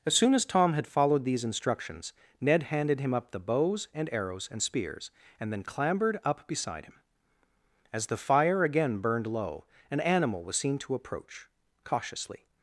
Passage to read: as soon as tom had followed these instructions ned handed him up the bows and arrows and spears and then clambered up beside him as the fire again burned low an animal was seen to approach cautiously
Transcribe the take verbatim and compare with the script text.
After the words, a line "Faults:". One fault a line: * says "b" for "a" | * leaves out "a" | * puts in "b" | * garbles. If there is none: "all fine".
as soon as tom had followed these instructions ned handed him up the bows and arrows and spears and then clambered up beside him as the fire again burned low an animal was seen to approach cautiously
Faults:
all fine